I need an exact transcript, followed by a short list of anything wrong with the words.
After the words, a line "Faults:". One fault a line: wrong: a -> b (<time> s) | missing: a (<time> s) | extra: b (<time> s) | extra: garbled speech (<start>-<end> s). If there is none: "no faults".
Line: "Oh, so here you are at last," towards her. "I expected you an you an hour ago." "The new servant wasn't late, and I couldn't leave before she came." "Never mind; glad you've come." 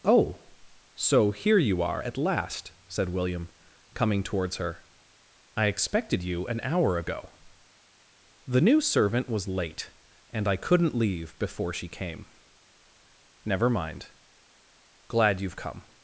"Oh, so here you are at last," said William, coming towards her. "I expected you an hour ago." "The new servant was late, and I couldn't leave before she came." "Never mind; glad you've come."
Faults:
extra: said William coming (2.9 s)
missing: you an (6.6 s)
wrong: wasn't -> was (9.3 s)